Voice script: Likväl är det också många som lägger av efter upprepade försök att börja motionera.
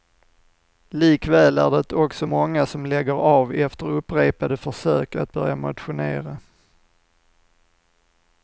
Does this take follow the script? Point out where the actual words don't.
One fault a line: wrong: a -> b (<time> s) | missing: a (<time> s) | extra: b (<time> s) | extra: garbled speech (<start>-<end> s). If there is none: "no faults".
no faults